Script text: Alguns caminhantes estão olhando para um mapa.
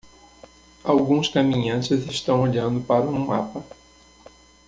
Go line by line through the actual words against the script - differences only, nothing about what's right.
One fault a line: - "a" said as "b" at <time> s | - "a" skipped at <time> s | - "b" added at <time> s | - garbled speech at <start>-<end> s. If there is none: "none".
none